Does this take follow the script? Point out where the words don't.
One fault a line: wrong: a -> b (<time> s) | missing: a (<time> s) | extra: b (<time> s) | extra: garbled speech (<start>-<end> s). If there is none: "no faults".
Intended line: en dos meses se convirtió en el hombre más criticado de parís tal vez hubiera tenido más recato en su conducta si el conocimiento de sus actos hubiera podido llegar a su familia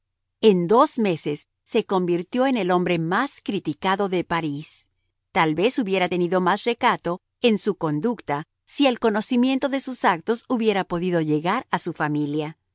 no faults